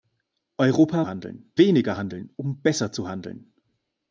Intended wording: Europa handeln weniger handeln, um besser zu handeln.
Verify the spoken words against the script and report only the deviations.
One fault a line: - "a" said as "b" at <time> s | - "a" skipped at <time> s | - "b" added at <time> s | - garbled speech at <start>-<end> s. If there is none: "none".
none